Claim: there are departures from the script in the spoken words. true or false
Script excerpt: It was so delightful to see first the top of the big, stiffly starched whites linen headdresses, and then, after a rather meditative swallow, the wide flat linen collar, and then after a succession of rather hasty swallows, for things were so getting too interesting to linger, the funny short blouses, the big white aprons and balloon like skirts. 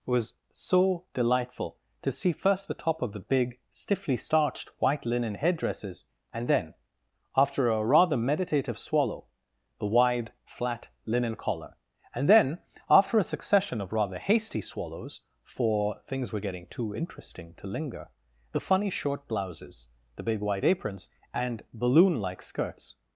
true